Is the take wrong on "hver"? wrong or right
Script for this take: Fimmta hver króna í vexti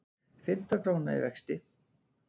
wrong